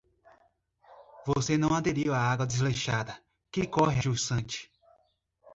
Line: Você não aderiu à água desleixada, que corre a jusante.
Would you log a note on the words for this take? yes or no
yes